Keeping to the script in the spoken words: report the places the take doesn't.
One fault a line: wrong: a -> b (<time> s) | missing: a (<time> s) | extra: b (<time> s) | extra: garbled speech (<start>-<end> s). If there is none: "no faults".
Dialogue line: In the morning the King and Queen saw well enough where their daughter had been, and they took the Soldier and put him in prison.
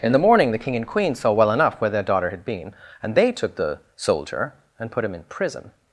no faults